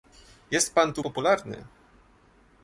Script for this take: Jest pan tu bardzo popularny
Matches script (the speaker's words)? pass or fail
fail